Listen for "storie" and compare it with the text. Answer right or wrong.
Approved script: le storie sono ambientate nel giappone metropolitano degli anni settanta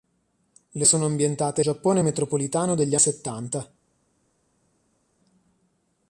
wrong